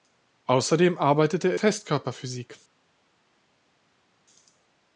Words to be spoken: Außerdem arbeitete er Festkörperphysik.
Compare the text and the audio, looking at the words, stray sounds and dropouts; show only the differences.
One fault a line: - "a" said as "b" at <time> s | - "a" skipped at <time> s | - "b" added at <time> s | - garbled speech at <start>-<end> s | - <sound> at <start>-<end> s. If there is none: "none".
none